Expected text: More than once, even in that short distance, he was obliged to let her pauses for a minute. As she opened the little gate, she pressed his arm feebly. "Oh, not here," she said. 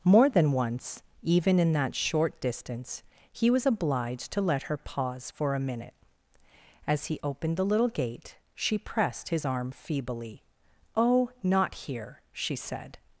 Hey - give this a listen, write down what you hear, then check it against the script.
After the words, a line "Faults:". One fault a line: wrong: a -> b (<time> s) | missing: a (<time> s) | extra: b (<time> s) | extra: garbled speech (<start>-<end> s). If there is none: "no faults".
More than once, even in that short distance, he was obliged to let her pause for a minute. As he opened the little gate, she pressed his arm feebly. "Oh, not here," she said.
Faults:
wrong: pauses -> pause (4.8 s)
wrong: she -> he (7.0 s)